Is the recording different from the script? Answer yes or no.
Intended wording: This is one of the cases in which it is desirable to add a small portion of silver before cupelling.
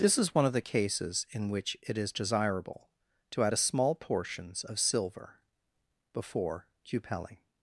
yes